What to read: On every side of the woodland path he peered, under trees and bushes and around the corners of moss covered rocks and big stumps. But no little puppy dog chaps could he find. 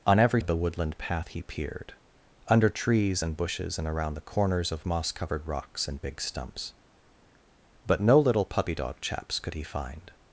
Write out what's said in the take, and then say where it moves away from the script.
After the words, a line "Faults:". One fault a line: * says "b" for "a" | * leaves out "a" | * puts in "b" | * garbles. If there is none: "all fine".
On every of the woodland path he peered, under trees and bushes and around the corners of moss covered rocks and big stumps. But no little puppy dog chaps could he find.
Faults:
* leaves out "side"